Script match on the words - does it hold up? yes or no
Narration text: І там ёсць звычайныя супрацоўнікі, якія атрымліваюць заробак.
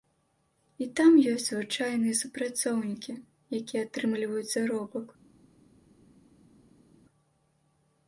yes